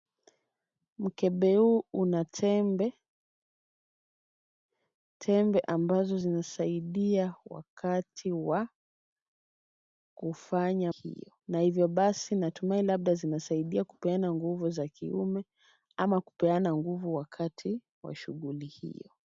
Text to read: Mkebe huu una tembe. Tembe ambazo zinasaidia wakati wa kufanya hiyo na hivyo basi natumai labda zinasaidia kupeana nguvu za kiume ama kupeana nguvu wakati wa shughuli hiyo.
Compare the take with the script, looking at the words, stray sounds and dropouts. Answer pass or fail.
pass